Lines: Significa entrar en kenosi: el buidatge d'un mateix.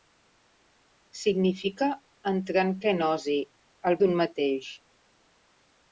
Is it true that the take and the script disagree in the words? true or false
true